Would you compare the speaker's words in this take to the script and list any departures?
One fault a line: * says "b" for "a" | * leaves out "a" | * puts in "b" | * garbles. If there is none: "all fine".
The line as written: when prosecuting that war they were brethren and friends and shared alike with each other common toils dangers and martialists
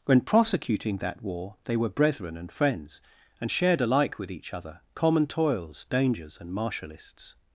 all fine